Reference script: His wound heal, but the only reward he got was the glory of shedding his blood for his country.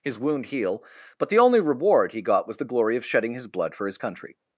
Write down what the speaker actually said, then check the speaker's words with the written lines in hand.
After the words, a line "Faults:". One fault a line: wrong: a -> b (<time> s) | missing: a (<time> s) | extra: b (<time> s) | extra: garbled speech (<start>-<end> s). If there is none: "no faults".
His wound heal, but the only reward he got was the glory of shedding his blood for his country.
Faults:
no faults